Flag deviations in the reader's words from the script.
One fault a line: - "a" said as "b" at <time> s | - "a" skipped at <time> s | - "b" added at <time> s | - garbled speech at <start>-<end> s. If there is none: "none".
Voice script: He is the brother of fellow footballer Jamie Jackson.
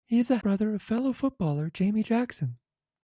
none